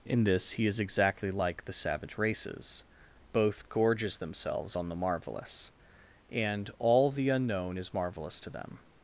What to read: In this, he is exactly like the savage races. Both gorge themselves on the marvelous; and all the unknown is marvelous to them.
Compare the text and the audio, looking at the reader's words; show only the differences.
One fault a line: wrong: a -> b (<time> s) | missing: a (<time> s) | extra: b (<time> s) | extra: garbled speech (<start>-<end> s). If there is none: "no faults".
wrong: gorge -> gorges (3.7 s)